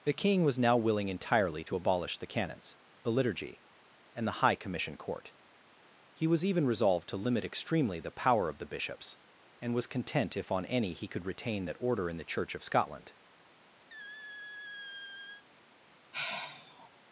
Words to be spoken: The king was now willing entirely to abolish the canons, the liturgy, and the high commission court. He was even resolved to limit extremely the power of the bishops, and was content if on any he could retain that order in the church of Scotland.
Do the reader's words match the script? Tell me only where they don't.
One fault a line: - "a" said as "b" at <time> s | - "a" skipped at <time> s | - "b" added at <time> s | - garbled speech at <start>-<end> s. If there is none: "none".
none